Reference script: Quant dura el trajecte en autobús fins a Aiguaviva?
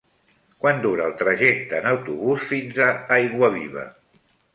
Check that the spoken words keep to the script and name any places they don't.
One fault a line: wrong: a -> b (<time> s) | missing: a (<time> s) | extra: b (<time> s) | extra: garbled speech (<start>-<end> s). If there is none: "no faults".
no faults